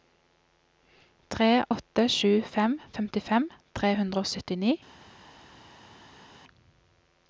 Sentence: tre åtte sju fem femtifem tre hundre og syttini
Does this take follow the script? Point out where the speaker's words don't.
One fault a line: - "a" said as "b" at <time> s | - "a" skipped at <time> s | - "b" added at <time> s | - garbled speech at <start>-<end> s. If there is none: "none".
none